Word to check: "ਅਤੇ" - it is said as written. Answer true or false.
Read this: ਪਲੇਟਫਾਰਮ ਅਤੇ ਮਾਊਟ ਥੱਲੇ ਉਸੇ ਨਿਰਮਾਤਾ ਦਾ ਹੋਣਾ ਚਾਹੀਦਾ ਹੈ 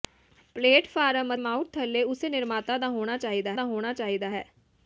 false